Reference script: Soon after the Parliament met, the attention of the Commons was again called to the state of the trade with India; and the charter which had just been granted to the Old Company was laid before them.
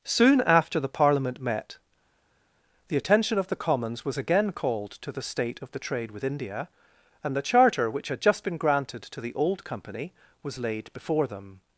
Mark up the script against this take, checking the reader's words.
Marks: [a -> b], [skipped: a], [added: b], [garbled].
Soon after the Parliament met, the attention of the Commons was again called to the state of the trade with India; and the charter which had just been granted to the Old Company was laid before them.